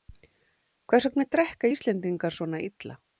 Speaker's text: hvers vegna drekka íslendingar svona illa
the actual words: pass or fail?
pass